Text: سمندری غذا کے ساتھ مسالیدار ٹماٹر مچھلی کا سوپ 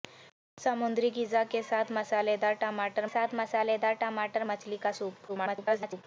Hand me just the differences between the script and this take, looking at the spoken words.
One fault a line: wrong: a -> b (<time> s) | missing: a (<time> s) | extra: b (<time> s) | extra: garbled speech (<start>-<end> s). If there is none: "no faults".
extra: ساتھ مسالیدار ٹماٹر (3.0 s)
extra: garbled speech (5.3-6.0 s)